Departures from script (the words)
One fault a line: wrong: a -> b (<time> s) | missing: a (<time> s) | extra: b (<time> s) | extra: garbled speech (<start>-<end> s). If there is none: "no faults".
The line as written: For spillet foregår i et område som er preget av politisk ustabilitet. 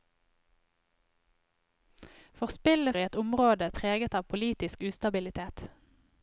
missing: foregår (3.0 s)
missing: som (3.7 s)